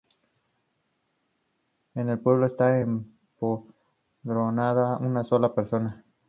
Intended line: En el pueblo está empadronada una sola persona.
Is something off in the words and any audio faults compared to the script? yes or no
no